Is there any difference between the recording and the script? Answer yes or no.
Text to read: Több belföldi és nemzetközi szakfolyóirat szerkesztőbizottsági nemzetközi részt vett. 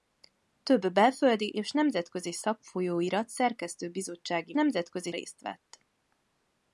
no